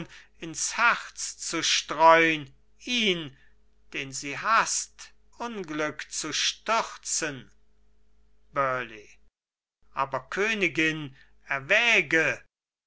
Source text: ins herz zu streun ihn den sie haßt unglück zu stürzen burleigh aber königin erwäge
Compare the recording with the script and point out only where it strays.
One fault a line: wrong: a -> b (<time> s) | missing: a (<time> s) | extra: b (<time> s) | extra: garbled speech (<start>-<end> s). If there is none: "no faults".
no faults